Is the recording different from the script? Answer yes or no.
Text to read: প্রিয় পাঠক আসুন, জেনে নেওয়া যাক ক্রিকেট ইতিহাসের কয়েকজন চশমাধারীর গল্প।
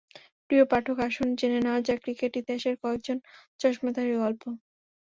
no